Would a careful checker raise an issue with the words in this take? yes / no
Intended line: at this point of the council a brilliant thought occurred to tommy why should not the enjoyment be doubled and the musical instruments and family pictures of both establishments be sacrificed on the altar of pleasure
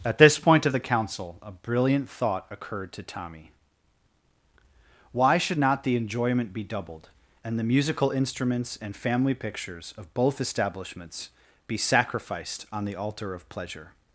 no